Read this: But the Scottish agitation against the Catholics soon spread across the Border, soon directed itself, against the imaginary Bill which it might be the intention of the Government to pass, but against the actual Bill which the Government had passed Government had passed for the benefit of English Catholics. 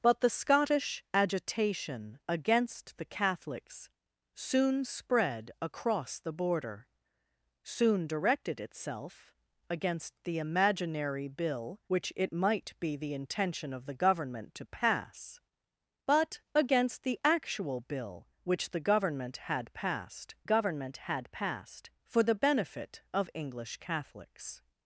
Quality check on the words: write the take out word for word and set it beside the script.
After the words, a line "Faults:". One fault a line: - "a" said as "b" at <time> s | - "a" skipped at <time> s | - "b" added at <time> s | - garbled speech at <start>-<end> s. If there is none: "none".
But the Scottish agitation against the Catholics soon spread across the Border, soon directed itself, against the imaginary Bill which it might be the intention of the Government to pass, but against the actual Bill which the Government had passed Government had passed for the benefit of English Catholics.
Faults:
none